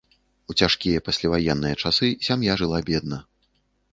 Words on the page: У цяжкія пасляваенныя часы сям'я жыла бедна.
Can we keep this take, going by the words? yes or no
yes